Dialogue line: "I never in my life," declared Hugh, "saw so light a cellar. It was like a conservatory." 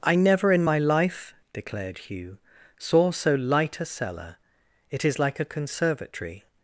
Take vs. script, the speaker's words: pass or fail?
fail